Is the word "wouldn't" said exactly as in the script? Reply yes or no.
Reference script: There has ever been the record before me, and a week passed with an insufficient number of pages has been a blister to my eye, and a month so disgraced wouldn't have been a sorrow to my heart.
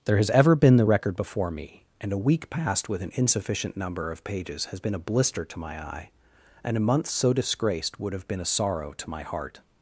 no